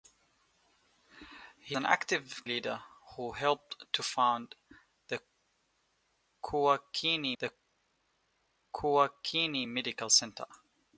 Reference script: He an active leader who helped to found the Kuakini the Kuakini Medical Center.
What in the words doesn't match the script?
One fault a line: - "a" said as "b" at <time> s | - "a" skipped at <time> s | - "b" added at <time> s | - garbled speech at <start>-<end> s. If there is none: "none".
none